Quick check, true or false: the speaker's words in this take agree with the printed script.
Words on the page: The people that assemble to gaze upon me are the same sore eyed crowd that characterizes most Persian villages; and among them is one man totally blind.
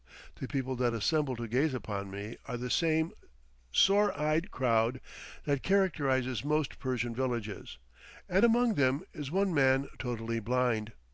true